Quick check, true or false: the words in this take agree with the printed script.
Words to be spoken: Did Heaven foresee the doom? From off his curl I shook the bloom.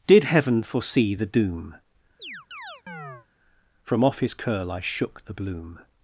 true